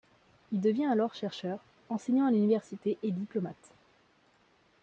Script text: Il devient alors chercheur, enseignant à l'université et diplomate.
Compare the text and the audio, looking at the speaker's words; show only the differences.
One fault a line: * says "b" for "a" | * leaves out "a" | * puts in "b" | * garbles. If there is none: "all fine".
all fine